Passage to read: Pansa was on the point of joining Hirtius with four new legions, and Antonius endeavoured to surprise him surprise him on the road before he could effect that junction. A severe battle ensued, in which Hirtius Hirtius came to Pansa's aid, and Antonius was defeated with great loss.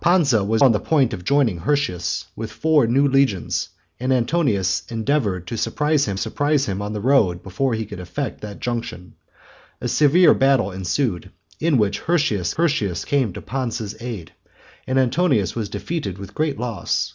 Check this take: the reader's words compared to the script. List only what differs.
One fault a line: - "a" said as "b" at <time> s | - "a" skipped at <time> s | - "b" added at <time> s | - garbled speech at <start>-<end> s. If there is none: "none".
none